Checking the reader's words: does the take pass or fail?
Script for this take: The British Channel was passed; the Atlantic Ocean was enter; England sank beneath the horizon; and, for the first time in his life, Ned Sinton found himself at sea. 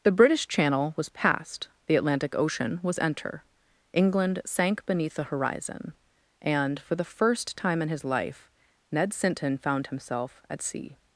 pass